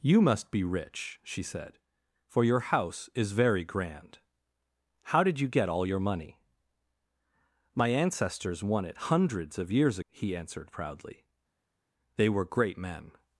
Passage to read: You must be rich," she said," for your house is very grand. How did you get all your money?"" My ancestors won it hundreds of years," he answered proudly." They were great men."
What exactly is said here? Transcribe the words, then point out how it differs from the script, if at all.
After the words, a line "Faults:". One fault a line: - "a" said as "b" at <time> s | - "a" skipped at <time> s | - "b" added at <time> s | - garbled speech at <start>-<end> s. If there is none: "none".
You must be rich," she said," for your house is very grand. How did you get all your money?"" My ancestors won it hundreds of years," he answered proudly." They were great men."
Faults:
none